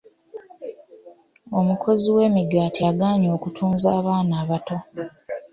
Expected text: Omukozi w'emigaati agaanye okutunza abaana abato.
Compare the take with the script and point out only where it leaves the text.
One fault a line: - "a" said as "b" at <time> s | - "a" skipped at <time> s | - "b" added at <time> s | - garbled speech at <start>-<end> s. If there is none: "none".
none